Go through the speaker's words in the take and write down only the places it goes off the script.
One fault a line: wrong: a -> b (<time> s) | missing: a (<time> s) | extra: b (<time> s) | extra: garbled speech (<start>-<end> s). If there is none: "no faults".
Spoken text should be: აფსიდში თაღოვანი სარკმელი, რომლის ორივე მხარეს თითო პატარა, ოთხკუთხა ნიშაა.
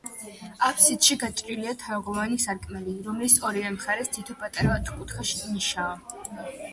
extra: გაჭრილია (1.2 s)